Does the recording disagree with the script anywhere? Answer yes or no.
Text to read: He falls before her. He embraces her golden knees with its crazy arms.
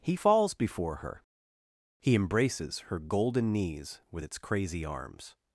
no